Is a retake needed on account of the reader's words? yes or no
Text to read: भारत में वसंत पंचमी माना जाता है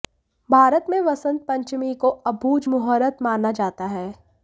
yes